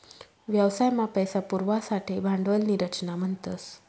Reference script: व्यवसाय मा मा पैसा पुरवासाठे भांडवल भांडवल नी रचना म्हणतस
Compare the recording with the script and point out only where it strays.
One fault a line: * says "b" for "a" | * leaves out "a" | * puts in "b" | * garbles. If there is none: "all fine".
* leaves out "मा"
* leaves out "भांडवल"